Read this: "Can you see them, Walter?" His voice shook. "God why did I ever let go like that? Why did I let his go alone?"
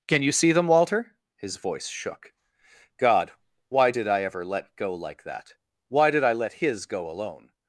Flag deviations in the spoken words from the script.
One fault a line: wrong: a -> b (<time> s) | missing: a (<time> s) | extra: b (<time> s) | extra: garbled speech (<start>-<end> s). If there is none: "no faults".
no faults